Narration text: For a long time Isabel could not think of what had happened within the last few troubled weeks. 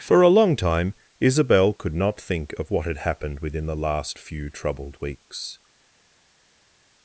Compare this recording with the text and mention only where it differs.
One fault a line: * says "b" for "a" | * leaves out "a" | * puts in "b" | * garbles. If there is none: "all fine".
all fine